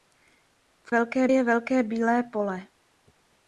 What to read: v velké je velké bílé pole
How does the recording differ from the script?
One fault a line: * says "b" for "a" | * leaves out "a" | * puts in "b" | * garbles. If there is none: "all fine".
all fine